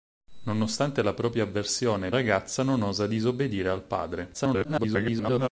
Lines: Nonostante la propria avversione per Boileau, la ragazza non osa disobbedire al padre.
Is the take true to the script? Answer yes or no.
no